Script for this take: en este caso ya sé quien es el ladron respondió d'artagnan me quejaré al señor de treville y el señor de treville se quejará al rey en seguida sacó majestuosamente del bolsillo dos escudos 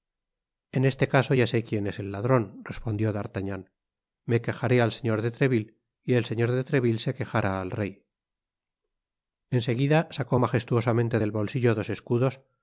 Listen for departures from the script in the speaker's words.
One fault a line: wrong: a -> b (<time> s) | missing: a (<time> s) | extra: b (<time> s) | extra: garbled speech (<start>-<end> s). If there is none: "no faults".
no faults